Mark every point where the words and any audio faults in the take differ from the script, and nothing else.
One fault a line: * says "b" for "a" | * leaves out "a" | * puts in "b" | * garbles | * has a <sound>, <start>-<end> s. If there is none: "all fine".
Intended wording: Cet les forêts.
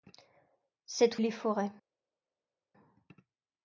all fine